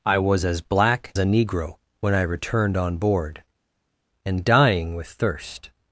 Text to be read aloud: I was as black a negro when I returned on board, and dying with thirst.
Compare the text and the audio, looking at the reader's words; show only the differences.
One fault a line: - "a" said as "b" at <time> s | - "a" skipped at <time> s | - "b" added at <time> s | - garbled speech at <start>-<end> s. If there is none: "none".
none